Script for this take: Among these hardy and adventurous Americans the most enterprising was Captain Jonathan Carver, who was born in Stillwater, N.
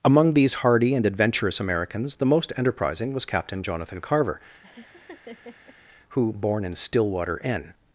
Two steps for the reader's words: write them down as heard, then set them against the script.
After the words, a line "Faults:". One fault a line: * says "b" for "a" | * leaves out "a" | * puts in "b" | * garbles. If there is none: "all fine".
Among these hardy and adventurous Americans the most enterprising was Captain Jonathan Carver, who born in Stillwater, N.
Faults:
* leaves out "was"